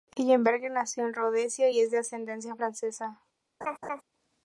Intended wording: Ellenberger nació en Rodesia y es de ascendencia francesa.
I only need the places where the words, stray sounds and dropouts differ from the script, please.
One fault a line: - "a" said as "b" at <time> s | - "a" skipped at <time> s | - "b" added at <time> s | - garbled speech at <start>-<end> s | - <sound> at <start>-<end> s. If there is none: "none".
- laugh at 3.6-4.0 s